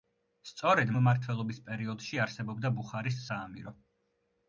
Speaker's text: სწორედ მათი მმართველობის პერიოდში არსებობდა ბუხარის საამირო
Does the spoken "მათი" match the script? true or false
false